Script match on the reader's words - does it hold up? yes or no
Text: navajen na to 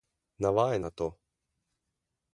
yes